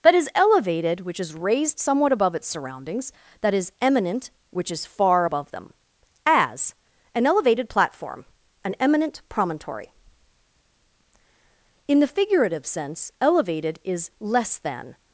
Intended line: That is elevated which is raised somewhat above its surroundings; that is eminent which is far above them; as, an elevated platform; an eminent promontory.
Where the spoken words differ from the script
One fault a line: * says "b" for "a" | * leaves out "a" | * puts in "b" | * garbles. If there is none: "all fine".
* puts in "In the figurative sense elevated is less than"